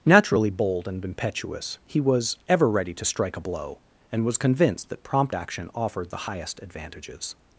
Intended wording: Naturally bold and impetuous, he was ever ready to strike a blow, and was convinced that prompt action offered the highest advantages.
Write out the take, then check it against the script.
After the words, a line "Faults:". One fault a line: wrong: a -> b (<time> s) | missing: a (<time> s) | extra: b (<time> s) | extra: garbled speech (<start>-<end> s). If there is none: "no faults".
Naturally bold and impetuous, he was ever ready to strike a blow, and was convinced that prompt action offered the highest advantages.
Faults:
no faults